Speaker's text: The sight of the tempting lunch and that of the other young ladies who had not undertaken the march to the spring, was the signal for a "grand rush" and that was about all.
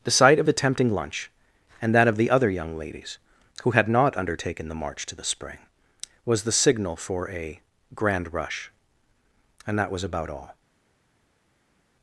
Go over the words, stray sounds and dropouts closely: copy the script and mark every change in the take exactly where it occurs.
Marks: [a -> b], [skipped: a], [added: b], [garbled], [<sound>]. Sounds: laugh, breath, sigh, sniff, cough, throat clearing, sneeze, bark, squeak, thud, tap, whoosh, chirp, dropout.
The sight of the tempting lunch and that of the other young ladies who had not undertaken the march to the spring, was the signal for a "grand rush" and that was about all.